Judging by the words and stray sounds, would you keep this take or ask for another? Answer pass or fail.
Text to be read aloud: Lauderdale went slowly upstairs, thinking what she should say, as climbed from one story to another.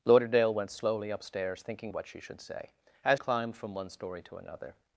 pass